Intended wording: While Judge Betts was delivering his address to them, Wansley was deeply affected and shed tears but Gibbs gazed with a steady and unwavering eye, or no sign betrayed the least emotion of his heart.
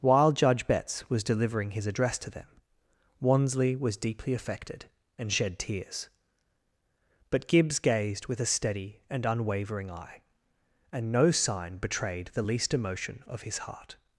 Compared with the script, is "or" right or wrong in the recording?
wrong